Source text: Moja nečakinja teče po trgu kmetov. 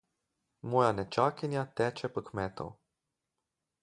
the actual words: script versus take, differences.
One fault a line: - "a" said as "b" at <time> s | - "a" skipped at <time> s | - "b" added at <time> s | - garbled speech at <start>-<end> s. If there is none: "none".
- "trgu" skipped at 2.2 s